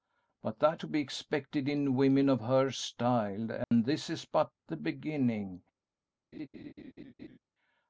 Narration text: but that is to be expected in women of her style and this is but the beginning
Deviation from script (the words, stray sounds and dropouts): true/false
true